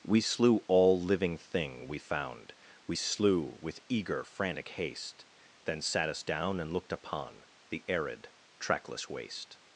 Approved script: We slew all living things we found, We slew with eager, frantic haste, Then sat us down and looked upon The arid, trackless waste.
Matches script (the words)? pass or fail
fail